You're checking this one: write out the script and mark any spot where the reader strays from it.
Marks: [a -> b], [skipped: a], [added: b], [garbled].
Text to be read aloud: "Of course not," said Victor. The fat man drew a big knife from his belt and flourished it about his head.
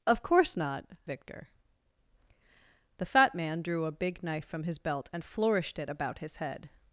"Of course not," [skipped: said] Victor. The fat man drew a big knife from his belt and flourished it about his head.